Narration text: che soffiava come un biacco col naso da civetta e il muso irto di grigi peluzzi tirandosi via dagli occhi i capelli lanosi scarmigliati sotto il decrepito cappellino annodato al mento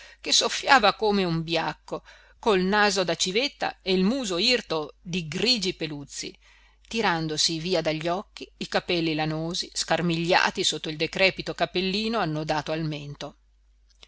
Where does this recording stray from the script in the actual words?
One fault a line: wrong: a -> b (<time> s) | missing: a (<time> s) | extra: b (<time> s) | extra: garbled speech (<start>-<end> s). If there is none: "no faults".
no faults